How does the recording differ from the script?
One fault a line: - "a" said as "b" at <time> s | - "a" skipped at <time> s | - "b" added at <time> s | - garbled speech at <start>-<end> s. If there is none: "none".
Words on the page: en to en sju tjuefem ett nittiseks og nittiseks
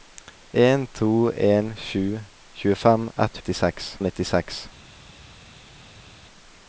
none